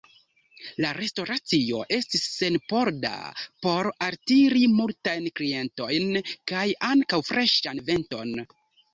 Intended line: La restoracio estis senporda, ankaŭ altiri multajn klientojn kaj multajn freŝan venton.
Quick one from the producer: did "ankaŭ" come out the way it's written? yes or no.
no